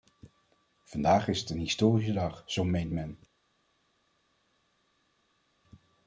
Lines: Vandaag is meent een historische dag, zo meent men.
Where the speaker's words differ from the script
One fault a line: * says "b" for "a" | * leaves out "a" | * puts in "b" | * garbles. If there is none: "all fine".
* says "het" for "meent"